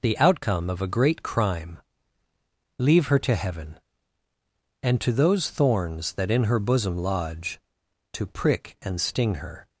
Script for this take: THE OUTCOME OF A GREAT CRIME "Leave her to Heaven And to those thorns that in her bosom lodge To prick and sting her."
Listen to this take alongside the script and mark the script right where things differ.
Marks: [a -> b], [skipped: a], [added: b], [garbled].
THE OUTCOME OF A GREAT CRIME "Leave her to Heaven And to those thorns that in her bosom lodge To prick and sting her."